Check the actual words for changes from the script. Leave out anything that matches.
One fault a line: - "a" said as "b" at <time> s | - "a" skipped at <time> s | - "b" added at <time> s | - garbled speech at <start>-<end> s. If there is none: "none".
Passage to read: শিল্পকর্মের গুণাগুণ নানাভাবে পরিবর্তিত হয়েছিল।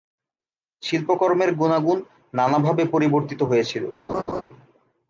none